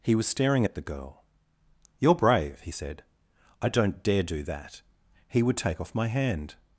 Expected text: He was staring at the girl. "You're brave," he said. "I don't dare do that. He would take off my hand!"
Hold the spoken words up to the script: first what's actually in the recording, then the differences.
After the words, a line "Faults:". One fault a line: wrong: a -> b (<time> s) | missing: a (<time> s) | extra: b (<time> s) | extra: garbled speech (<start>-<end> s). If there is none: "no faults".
He was staring at the girl. "You're brave," he said. "I don't dare do that. He would take off my hand!"
Faults:
no faults